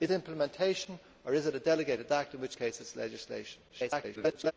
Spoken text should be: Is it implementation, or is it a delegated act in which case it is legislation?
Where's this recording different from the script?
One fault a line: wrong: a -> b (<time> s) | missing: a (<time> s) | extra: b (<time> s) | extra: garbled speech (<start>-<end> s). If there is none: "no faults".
missing: it (0.1 s)
extra: garbled speech (3.7-4.5 s)